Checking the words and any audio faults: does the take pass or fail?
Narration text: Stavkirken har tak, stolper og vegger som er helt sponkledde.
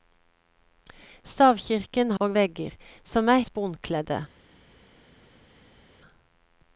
fail